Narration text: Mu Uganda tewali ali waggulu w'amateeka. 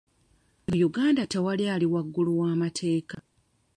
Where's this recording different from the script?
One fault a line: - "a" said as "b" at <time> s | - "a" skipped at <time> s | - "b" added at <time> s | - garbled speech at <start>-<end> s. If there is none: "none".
none